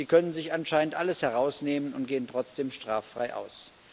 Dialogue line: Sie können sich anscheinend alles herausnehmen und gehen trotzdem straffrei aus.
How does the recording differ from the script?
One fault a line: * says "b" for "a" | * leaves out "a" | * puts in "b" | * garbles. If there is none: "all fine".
all fine